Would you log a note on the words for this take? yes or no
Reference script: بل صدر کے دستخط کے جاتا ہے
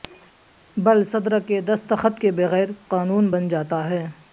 yes